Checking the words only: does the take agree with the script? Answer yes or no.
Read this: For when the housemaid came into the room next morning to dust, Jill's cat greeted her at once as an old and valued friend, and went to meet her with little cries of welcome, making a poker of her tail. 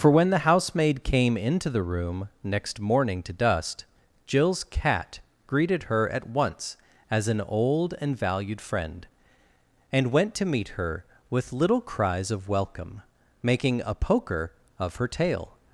yes